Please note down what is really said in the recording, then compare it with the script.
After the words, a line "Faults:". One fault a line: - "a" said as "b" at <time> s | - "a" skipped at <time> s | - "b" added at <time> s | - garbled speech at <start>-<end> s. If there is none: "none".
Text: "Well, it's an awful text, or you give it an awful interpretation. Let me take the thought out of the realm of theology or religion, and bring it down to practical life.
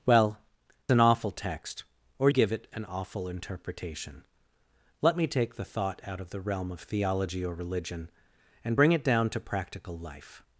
"Well, an awful text, or give it an awful interpretation. Let me take the thought out of the realm of theology or religion, and bring it down to practical life.
Faults:
- "it's" skipped at 0.4 s
- "you" skipped at 2.3 s